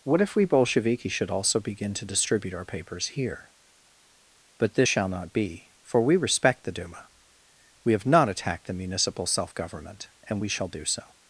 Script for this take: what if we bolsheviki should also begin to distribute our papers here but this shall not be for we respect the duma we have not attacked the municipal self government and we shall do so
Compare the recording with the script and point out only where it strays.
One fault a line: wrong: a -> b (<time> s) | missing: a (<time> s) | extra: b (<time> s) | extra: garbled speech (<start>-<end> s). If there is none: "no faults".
no faults